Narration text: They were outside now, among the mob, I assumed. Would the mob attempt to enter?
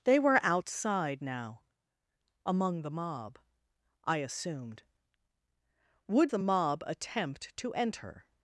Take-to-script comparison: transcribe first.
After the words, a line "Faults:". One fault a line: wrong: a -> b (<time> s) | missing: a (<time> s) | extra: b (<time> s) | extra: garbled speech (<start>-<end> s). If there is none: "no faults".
They were outside now, among the mob, I assumed. Would the mob attempt to enter?
Faults:
no faults